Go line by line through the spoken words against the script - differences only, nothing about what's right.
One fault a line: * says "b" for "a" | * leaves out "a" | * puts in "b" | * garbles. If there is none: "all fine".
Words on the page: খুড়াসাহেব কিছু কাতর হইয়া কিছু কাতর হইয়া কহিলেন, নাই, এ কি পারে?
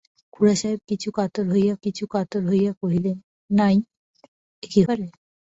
all fine